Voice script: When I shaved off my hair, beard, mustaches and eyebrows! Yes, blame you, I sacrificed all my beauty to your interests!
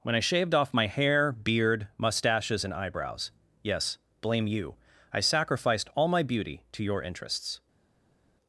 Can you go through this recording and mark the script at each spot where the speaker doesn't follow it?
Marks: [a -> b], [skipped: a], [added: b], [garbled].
When I shaved off my hair, beard, mustaches and eyebrows! Yes, blame you, I sacrificed all my beauty to your interests!